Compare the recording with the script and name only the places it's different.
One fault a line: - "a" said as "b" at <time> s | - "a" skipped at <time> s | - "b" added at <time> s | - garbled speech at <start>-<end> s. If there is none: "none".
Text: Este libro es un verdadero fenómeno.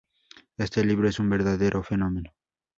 none